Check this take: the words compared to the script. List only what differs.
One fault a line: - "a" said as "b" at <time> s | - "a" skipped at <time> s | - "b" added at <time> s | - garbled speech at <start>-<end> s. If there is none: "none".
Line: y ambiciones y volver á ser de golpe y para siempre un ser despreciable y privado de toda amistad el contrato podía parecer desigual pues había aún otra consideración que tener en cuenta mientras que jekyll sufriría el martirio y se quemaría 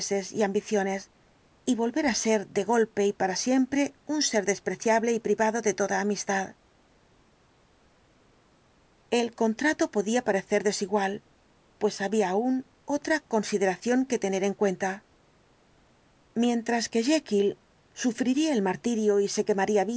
none